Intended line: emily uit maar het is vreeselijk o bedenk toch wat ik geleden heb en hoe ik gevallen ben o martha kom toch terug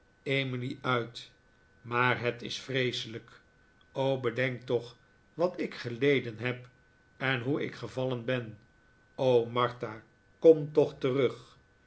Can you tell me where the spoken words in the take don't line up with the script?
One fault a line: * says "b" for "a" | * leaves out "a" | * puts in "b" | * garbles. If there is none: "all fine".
all fine